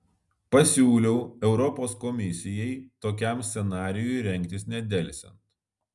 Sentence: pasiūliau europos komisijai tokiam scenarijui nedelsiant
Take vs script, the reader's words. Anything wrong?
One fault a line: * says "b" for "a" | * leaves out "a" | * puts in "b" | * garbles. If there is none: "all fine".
* puts in "rengtis"